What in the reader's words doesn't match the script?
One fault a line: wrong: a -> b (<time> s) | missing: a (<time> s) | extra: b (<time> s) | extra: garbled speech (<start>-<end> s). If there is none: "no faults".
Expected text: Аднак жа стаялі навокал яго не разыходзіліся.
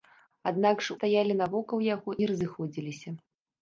no faults